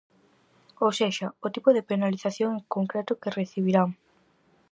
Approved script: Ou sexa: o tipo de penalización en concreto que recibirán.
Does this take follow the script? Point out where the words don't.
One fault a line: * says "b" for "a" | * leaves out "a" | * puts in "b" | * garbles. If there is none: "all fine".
all fine